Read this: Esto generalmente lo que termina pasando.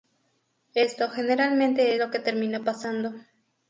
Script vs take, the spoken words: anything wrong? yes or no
no